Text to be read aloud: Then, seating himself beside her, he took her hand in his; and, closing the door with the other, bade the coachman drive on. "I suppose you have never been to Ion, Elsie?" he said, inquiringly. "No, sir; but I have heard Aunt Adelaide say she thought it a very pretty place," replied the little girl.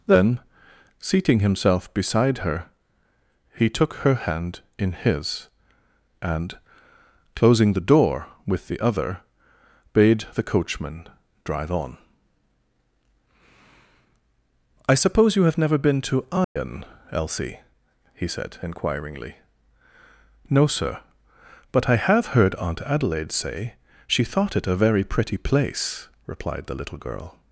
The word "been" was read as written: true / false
true